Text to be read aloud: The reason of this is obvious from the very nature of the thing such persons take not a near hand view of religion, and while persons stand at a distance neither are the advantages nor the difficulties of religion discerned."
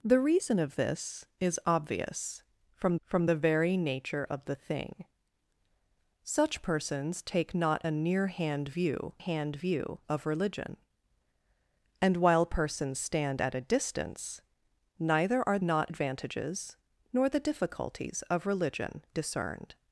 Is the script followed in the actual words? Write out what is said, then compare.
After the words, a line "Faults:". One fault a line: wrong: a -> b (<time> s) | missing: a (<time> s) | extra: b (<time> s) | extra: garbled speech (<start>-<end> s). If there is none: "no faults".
The reason of this is obvious from from the very nature of the thing such persons take not a near hand view hand view of religion, and while persons stand at a distance neither are not advantages nor the difficulties of religion discerned."
Faults:
extra: from (3.0 s)
extra: hand view (9.2 s)
wrong: the -> not (15.6 s)